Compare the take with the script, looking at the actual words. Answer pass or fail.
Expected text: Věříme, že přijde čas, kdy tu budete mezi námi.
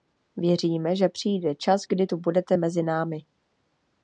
pass